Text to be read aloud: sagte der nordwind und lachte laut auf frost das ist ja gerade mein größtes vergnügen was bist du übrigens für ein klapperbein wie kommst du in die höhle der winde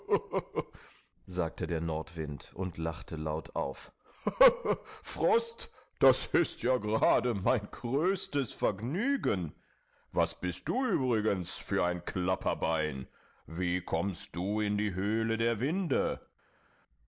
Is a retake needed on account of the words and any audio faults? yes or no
no